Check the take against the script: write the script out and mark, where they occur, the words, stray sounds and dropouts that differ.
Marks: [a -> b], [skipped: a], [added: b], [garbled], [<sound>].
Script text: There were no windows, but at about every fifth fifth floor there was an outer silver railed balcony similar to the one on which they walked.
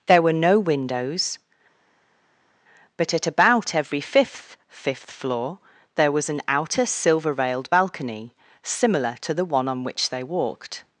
There were no windows, but at about every fifth fifth floor there was an outer silver railed balcony similar to the one on which they walked.